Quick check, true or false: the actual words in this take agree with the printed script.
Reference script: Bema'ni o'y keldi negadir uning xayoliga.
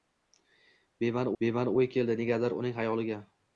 false